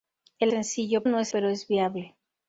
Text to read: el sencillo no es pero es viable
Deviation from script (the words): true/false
false